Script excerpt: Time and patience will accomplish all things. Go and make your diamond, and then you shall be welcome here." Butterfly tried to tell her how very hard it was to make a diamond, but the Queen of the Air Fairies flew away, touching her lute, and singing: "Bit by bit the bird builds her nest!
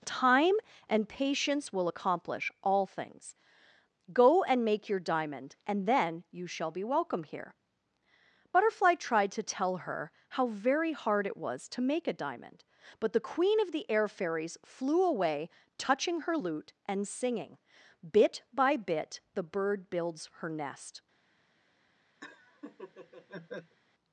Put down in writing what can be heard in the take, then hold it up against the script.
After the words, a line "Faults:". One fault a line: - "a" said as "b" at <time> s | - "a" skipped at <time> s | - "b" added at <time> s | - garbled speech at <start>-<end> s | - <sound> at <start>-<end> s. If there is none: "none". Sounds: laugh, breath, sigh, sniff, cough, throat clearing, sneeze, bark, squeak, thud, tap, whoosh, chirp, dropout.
Time and patience will accomplish all things. Go and make your diamond, and then you shall be welcome here." Butterfly tried to tell her how very hard it was to make a diamond, but the Queen of the Air Fairies flew away, touching her lute, and singing: "Bit by bit the bird builds her nest!
Faults:
- laugh at 22.2-23.8 s